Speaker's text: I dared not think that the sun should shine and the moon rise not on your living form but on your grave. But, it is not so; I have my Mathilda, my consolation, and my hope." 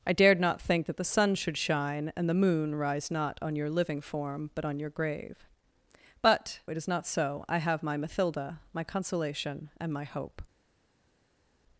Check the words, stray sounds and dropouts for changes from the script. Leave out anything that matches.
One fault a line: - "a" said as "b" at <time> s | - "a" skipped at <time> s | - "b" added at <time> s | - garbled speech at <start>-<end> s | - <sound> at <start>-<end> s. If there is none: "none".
none